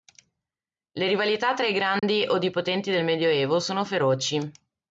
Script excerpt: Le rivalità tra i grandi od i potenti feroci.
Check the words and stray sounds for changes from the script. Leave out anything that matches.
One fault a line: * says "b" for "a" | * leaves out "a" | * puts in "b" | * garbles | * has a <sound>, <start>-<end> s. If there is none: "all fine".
* has a dropout, 2.0-2.0 s
* puts in "del Medioevo sono"